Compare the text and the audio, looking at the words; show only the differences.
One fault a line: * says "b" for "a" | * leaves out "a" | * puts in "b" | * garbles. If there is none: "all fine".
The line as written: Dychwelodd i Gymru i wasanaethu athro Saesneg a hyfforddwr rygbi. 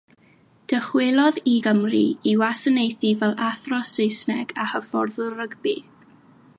* puts in "fel"